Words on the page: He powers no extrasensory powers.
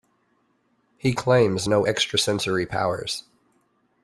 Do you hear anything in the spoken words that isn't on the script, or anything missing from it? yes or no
yes